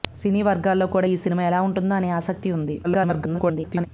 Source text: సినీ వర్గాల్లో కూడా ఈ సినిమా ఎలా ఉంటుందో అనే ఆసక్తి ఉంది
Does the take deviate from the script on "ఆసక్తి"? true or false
false